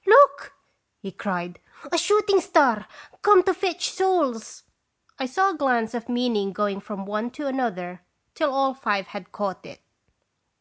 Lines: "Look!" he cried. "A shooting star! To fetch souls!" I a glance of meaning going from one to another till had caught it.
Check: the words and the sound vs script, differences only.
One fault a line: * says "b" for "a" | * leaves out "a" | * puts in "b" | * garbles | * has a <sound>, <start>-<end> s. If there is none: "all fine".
* puts in "Come"
* puts in "saw"
* puts in "all five"